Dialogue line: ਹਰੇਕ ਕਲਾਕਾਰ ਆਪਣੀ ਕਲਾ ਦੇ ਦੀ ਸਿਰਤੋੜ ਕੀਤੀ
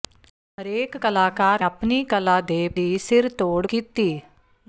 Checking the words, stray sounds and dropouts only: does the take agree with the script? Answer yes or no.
yes